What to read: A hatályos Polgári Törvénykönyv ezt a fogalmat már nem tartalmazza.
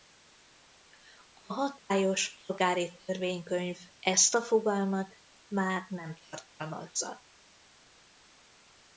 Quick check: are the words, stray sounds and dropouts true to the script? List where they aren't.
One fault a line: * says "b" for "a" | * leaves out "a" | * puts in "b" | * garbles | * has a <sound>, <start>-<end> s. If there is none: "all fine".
all fine